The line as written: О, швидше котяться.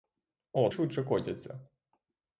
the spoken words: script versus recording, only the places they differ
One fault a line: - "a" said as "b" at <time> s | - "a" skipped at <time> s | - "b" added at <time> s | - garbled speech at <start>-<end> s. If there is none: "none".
none